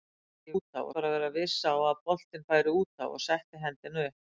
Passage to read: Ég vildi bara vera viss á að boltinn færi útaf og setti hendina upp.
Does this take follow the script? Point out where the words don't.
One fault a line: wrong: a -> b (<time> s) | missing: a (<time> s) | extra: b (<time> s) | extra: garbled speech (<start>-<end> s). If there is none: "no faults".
wrong: vildi -> útaf (0.6 s)